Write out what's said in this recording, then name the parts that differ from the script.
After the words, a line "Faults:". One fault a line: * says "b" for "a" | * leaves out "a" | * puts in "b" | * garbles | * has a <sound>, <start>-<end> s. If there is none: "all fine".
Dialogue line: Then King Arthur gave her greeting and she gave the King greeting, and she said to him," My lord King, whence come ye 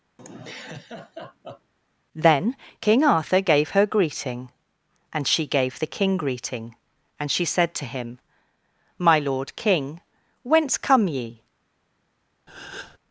Then King Arthur gave her greeting and she gave the King greeting, and she said to him," My lord King, whence come ye
Faults:
* has a laugh, 0.2-1.7 s
* has a breath, 12.5-13.0 s